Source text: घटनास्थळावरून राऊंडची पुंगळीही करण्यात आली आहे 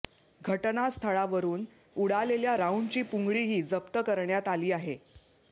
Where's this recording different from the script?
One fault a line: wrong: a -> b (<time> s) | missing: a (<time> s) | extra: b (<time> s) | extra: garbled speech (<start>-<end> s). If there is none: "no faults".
extra: उडालेल्या (1.9 s)
extra: जप्त (3.6 s)